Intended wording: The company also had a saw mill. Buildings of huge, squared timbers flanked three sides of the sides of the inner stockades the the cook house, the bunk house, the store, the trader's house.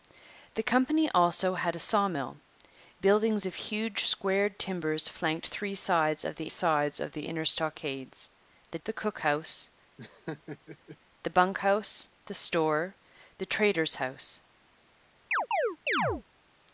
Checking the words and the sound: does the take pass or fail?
fail